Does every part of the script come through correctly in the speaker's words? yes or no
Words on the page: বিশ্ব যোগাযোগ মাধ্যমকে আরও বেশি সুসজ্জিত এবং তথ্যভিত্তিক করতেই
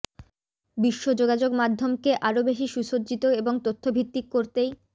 yes